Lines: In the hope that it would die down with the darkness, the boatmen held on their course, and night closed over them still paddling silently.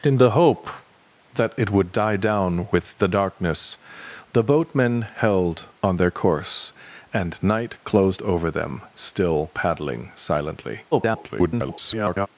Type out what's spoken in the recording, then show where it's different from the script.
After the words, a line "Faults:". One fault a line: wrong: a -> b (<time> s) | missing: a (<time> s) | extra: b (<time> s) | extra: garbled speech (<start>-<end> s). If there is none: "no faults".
In the hope that it would die down with the darkness, the boatmen held on their course, and night closed over them still paddling silently. [garbled]
Faults:
extra: garbled speech (10.9-12.3 s)